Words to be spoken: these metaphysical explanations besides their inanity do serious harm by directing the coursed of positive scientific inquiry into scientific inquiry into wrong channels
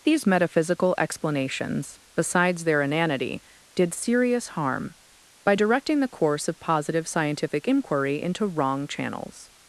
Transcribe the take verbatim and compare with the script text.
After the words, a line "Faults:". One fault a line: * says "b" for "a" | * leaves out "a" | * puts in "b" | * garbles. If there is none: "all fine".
these metaphysical explanations besides their inanity did serious harm by directing the course of positive scientific inquiry into wrong channels
Faults:
* says "did" for "do"
* says "course" for "coursed"
* leaves out "scientific inquiry into"